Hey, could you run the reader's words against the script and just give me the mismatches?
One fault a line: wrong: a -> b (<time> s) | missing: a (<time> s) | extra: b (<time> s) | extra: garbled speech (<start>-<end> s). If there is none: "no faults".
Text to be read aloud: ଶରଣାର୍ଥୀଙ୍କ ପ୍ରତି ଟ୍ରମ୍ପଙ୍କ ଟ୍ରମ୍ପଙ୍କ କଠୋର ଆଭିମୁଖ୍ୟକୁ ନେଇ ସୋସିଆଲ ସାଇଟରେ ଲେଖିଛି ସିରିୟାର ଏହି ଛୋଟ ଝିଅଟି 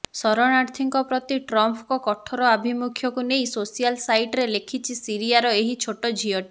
missing: ଟ୍ରମ୍ପଙ୍କ (2.0 s)